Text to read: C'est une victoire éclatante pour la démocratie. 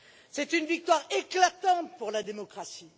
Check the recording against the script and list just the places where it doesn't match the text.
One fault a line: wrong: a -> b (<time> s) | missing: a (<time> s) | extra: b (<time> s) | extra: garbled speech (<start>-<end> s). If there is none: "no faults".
no faults